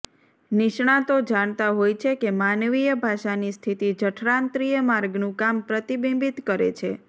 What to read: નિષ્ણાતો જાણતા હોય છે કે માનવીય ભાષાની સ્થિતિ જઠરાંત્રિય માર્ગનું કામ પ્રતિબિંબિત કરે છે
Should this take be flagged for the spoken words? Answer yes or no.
no